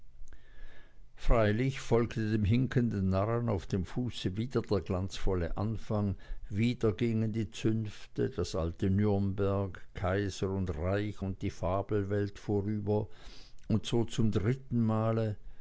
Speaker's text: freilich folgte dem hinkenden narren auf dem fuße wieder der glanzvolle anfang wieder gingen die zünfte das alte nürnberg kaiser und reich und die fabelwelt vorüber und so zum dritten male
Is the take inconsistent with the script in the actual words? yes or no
no